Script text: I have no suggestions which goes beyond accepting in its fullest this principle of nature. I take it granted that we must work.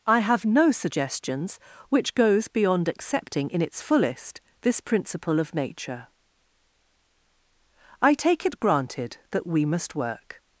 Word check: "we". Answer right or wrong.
right